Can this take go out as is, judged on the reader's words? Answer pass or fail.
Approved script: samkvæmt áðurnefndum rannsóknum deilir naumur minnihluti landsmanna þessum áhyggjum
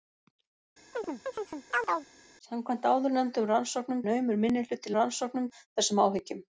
fail